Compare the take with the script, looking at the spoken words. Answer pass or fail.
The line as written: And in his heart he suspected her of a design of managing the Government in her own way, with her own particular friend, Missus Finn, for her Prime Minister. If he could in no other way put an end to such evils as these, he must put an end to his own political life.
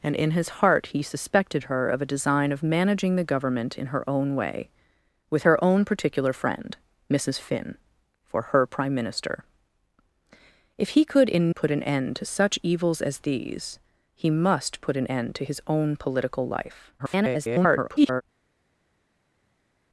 fail